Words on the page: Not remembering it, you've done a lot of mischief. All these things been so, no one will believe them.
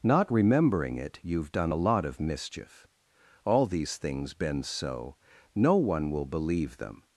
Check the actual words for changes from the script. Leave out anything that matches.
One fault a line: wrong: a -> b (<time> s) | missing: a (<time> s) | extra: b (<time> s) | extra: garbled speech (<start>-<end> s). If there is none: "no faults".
no faults